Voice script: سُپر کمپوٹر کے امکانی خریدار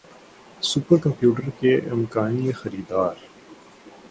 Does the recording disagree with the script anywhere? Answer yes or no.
no